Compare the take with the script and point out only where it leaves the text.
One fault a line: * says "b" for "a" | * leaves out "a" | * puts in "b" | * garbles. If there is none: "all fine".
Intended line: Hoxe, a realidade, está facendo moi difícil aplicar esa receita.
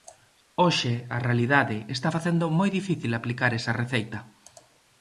all fine